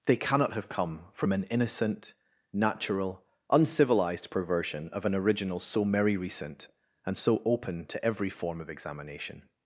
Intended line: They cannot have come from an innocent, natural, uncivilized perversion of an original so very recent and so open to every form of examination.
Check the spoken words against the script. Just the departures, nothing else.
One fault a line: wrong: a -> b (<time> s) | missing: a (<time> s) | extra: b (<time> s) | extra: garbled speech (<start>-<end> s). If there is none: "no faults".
wrong: very -> merry (5.8 s)